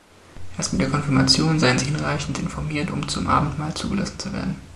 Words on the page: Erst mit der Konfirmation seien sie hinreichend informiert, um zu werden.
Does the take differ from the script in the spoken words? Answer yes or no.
yes